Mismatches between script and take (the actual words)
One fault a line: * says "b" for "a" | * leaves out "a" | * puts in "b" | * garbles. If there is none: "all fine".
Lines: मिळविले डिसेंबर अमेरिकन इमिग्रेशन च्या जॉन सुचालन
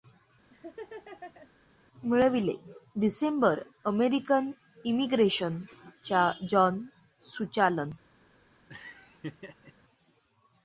all fine